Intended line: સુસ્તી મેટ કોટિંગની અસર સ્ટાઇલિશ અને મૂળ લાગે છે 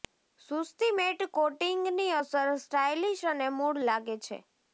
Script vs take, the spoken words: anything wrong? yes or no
no